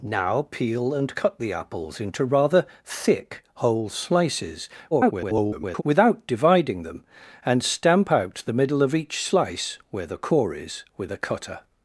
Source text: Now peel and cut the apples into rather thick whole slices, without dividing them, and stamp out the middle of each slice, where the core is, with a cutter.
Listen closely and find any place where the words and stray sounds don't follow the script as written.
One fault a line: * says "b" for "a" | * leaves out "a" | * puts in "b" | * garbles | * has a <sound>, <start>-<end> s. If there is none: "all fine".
* garbles